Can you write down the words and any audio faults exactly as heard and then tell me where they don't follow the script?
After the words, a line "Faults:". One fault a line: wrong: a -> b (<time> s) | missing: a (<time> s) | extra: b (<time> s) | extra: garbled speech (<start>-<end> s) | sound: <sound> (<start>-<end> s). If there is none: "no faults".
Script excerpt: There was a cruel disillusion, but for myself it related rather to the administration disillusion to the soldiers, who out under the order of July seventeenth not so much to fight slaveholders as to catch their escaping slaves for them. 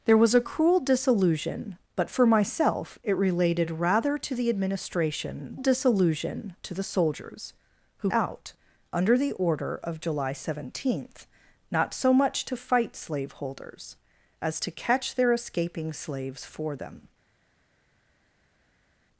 There was a cruel disillusion, but for myself it related rather to the administration disillusion to the soldiers, who out under the order of July seventeenth not so much to fight slaveholders as to catch their escaping slaves for them.
Faults:
no faults